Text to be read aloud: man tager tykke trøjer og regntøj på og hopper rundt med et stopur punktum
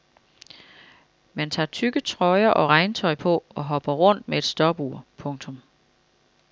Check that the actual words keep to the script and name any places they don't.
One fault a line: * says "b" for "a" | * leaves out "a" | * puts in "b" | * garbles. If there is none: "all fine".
all fine